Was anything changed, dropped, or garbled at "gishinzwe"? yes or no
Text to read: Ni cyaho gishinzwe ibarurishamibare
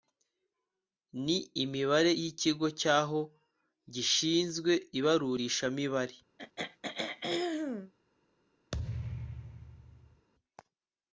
no